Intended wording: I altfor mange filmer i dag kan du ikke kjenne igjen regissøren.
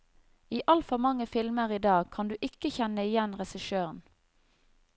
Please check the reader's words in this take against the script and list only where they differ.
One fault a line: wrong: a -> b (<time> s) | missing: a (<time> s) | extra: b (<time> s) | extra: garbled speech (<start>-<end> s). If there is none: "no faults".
no faults